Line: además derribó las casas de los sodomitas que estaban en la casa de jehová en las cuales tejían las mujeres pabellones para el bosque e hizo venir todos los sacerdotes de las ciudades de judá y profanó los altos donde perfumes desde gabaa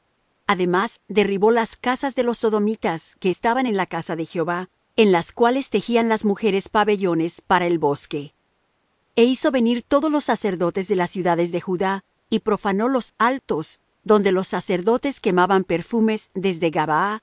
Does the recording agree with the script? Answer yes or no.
no